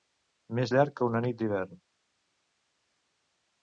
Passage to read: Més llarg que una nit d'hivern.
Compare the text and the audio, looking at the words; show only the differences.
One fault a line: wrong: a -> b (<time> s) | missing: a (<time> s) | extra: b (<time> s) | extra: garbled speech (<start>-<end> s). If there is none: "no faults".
no faults